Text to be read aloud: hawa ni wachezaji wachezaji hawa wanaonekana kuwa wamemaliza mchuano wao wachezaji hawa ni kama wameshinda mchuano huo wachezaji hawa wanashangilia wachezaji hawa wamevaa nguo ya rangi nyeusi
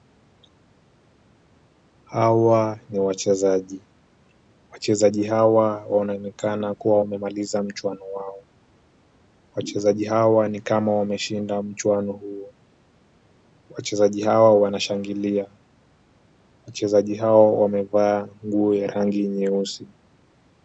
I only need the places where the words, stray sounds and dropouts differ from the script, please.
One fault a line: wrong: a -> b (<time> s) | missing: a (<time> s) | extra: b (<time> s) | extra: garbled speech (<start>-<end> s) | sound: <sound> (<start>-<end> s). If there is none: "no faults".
no faults